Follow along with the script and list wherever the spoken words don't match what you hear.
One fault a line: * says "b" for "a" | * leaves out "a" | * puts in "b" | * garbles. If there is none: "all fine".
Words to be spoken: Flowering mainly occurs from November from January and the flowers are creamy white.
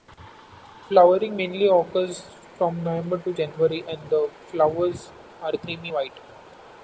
* says "to" for "from"